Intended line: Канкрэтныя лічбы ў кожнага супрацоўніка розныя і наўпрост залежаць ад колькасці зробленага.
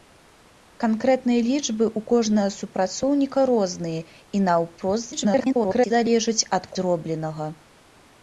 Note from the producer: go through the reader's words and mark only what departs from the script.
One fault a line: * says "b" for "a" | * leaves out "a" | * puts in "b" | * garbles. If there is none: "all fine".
* garbles
* leaves out "колькасці"